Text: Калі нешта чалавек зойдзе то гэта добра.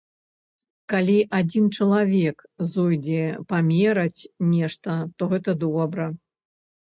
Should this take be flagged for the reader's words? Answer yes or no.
yes